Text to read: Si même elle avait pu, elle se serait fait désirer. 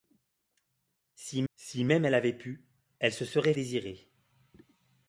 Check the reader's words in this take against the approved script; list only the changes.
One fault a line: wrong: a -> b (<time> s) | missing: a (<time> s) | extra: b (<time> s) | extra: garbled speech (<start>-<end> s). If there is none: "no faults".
extra: si (1.5 s)
missing: fait (3.5 s)